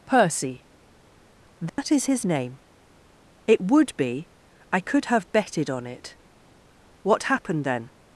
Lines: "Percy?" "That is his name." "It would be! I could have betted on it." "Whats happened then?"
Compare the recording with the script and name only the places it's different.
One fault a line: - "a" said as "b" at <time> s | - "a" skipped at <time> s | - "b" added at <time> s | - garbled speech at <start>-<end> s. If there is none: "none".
- "Whats" said as "What" at 7.0 s